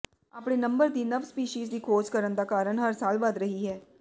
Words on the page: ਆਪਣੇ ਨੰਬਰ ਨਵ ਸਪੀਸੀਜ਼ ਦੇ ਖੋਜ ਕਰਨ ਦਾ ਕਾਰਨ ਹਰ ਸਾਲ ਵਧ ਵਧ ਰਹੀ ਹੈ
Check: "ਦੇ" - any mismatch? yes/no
yes